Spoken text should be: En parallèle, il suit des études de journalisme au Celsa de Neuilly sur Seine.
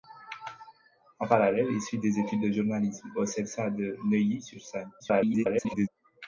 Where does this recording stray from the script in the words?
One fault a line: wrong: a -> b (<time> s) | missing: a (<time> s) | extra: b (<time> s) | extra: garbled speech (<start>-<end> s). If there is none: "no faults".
extra: garbled speech (5.0-5.9 s)